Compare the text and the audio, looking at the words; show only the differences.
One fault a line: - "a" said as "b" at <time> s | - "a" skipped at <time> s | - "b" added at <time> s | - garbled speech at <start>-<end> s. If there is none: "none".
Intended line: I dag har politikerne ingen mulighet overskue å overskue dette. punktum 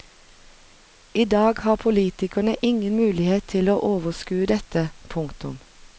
- "overskue" said as "til" at 3.6 s